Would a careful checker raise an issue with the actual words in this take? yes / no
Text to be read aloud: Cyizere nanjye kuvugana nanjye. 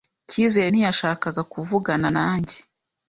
yes